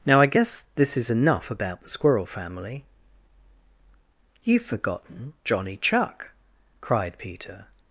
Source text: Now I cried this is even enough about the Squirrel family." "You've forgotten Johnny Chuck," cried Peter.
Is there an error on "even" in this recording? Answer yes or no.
yes